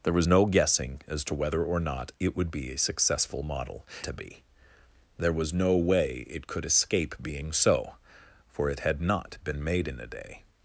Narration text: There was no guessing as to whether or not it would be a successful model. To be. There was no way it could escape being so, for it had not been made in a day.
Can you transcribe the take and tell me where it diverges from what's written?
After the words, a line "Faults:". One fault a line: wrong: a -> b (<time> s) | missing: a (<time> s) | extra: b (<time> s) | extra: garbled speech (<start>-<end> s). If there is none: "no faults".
There was no guessing as to whether or not it would be a successful model. To be. There was no way it could escape being so, for it had not been made in a day.
Faults:
no faults